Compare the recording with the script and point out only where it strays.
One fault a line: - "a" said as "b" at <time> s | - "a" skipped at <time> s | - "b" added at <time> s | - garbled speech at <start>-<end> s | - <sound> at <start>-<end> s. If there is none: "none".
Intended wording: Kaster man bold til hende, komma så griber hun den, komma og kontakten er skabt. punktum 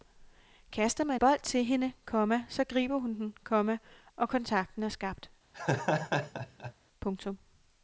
- laugh at 5.5-6.7 s